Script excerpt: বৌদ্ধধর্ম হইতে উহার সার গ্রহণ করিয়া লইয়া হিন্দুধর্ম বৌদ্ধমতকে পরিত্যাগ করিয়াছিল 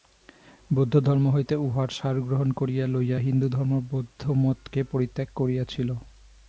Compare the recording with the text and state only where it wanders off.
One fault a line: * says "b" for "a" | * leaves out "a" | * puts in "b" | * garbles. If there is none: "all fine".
all fine